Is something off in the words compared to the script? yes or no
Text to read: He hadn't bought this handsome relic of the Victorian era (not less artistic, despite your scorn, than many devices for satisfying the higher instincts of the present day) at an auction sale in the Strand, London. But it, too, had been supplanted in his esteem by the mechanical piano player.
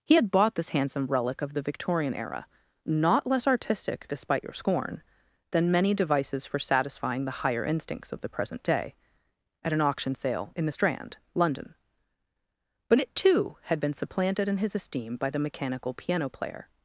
yes